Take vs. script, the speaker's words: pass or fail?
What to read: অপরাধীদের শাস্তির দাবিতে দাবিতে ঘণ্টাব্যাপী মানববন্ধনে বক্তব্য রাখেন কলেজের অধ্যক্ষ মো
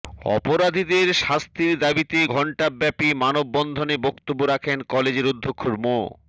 fail